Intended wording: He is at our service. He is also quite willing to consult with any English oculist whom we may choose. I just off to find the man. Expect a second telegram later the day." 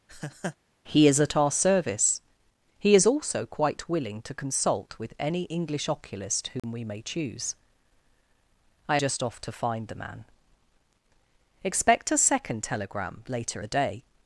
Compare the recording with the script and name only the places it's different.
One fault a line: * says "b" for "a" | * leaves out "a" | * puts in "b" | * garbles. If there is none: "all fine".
all fine